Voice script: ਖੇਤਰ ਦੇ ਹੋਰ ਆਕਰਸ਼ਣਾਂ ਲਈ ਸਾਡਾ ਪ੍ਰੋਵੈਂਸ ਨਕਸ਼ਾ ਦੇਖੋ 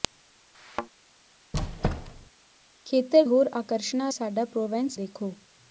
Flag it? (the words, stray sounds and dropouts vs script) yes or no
yes